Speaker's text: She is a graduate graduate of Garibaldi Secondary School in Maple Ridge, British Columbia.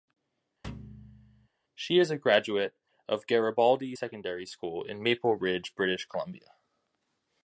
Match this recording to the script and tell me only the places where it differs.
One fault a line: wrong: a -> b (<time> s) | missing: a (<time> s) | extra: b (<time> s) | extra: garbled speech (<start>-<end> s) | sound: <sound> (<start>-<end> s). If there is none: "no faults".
sound: thud (0.6-1.5 s)
missing: graduate (2.8 s)